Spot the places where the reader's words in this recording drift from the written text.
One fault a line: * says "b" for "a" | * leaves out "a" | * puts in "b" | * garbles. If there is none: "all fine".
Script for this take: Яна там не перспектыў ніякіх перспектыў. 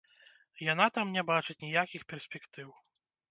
* says "бачыць" for "перспектыў"